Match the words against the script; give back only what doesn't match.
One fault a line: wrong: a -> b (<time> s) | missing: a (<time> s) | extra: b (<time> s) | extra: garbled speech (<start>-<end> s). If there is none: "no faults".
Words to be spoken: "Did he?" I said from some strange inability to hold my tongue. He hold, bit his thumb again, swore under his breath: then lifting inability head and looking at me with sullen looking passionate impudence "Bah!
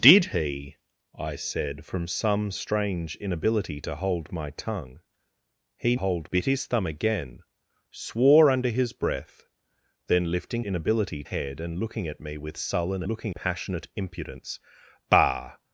no faults